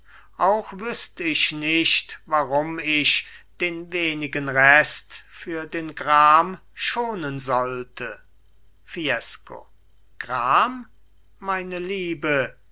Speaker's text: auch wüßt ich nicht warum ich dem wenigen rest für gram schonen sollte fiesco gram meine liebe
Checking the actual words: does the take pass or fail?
fail